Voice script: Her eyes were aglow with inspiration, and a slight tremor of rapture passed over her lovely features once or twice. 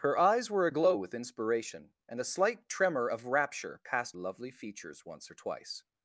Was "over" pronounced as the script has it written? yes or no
no